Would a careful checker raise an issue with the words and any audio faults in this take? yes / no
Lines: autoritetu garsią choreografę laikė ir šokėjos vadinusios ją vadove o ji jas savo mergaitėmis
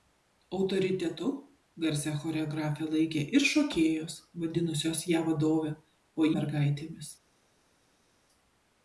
yes